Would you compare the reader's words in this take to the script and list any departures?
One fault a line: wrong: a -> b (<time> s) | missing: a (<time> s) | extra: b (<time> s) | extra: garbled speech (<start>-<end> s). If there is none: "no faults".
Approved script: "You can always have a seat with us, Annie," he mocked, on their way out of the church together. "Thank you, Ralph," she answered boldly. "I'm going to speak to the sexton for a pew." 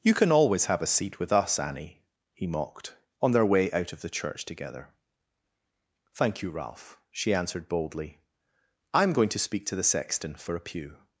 no faults